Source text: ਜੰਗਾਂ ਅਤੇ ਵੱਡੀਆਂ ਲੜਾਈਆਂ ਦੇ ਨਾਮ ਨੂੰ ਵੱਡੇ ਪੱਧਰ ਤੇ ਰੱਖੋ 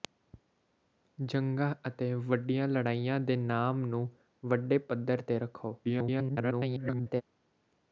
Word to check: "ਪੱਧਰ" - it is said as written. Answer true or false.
true